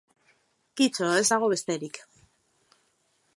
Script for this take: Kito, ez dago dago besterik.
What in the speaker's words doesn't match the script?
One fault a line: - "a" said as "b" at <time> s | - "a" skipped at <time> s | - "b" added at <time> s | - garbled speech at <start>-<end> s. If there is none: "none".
- "dago" skipped at 1.5 s